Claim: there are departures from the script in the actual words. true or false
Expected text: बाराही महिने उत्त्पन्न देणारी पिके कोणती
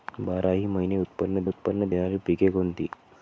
true